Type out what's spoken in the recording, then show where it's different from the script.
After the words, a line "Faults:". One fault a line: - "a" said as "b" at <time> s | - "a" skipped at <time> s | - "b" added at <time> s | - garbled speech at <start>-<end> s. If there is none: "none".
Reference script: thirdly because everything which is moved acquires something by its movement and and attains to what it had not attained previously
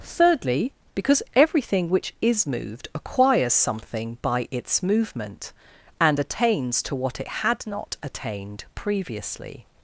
thirdly because everything which is moved acquires something by its movement and attains to what it had not attained previously
Faults:
- "and" skipped at 6.2 s